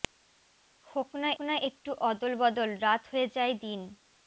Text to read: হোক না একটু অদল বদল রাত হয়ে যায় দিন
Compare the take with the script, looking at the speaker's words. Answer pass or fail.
fail